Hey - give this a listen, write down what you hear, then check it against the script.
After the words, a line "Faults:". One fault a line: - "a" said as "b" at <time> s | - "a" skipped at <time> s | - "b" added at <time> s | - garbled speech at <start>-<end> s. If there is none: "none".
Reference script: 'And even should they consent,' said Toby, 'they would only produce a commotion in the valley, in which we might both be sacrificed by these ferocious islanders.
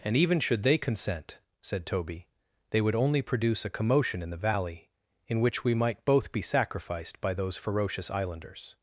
'And even should they consent,' said Toby, 'they would only produce a commotion in the valley, in which we might both be sacrificed by those ferocious islanders.
Faults:
- "these" said as "those" at 7.3 s